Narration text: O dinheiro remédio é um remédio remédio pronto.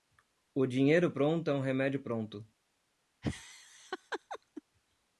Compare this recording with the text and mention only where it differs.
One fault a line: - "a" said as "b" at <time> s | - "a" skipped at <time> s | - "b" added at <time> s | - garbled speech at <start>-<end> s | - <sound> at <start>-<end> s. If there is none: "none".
- "remédio" said as "pronto" at 1.1 s
- "remédio" skipped at 2.0 s
- laugh at 3.2-4.6 s